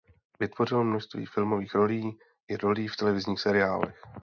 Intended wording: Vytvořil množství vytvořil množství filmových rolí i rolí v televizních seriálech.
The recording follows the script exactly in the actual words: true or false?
false